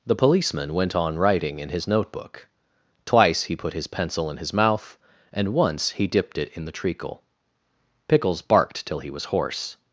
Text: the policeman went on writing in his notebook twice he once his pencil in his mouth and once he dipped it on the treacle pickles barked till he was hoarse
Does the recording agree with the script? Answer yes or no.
no